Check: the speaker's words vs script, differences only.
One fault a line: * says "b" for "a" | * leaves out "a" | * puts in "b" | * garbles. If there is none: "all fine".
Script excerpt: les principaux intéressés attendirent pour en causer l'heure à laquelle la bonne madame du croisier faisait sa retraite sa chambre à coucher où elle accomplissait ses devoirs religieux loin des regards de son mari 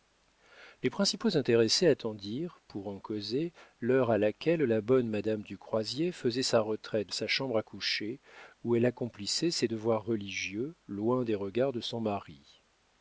all fine